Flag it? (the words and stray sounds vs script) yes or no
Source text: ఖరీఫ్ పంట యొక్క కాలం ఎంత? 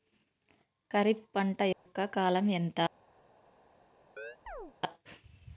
yes